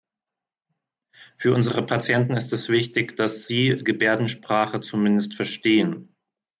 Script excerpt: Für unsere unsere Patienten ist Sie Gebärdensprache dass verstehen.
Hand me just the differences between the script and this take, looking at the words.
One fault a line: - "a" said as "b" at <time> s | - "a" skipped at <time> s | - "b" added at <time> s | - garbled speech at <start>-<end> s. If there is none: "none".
- "unsere" skipped at 1.9 s
- "es wichtig dass" added at 2.5 s
- "dass" said as "zumindest" at 4.8 s